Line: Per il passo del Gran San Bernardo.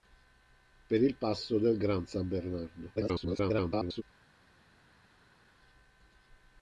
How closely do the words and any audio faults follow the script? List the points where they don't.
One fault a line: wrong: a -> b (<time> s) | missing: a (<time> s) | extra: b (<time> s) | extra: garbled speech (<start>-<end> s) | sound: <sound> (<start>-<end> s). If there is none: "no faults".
extra: garbled speech (3.0-4.0 s)